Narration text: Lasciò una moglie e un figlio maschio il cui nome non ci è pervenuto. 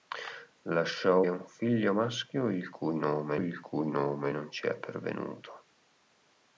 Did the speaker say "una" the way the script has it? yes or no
no